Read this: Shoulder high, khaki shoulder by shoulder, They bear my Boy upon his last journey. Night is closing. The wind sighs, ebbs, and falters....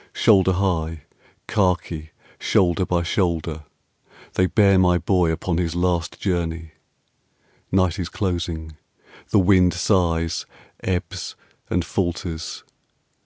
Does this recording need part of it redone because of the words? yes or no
no